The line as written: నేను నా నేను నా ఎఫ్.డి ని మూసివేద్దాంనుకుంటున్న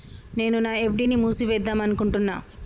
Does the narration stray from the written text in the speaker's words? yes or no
yes